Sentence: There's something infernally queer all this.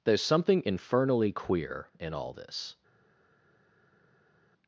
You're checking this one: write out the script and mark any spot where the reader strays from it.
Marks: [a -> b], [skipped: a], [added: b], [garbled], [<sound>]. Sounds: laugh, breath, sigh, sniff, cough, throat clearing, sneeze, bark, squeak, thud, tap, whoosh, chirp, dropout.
There's something infernally queer [added: in] all this.